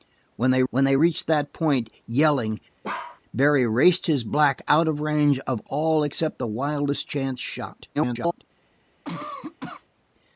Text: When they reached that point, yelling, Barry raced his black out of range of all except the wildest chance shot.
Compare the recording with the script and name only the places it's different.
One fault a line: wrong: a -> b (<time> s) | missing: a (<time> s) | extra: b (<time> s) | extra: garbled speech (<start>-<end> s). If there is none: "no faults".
extra: when they (0.7 s)
extra: garbled speech (7.9-8.4 s)